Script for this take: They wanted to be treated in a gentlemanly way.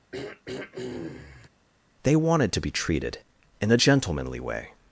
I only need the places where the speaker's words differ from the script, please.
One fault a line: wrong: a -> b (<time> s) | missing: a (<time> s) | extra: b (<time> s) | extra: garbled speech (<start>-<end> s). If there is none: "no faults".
no faults